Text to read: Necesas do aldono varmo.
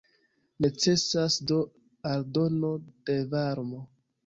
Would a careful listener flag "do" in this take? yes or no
no